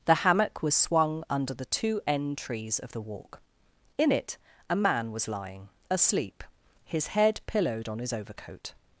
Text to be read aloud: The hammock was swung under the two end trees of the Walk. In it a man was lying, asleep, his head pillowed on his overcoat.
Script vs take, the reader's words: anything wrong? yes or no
no